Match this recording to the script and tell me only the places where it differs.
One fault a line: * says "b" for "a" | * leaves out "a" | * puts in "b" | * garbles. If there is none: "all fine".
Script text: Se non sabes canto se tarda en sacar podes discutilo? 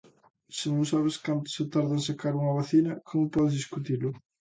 * puts in "unha vacina como"